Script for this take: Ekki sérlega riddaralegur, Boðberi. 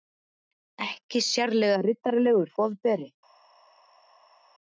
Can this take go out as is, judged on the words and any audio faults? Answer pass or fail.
pass